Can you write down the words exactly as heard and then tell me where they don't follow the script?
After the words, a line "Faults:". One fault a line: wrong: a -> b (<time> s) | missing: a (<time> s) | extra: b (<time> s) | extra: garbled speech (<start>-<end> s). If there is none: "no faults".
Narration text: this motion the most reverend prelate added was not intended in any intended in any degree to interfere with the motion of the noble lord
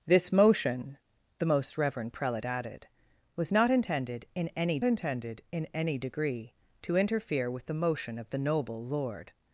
this motion the most reverend prelate added was not intended in any intended in any degree to interfere with the motion of the noble lord
Faults:
no faults